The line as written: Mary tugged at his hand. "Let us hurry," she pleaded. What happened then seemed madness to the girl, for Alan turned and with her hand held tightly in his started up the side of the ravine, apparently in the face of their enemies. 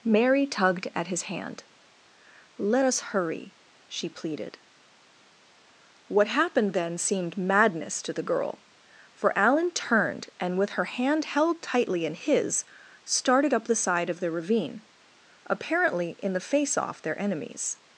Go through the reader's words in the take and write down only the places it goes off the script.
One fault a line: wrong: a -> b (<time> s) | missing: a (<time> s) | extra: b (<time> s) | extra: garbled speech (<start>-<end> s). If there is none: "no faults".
wrong: of -> off (16.8 s)